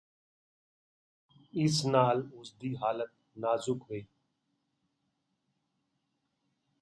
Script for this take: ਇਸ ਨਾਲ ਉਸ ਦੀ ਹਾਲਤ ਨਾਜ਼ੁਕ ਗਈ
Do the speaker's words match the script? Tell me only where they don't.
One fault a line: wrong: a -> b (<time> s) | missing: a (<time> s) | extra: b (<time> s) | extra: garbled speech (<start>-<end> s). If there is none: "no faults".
no faults